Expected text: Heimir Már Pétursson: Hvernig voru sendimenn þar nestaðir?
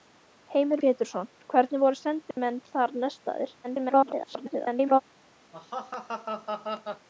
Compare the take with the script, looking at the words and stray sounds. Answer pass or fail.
fail